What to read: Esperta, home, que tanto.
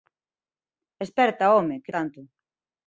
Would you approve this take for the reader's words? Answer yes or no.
yes